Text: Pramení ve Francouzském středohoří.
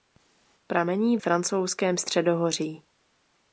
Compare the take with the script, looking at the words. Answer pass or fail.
fail